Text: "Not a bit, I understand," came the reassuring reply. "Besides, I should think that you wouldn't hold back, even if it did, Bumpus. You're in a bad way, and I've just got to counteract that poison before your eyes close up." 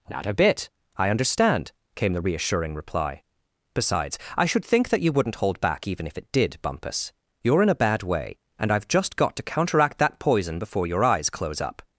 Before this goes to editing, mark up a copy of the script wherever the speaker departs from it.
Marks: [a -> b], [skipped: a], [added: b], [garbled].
"Not a bit, I understand," came the reassuring reply. "Besides, I should think that you wouldn't hold back, even if it did, Bumpus. You're in a bad way, and I've just got to counteract that poison before your eyes close up."